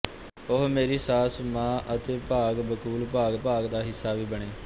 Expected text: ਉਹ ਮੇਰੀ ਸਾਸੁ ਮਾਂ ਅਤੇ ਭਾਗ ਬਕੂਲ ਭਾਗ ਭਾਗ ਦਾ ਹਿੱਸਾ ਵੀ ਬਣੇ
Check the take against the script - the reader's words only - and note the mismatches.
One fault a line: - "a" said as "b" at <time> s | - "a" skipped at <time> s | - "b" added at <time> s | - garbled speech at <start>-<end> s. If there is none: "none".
none